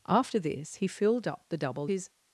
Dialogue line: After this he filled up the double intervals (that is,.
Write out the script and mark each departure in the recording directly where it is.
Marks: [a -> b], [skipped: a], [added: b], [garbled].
After this he filled up the double [skipped: intervals (that] is,.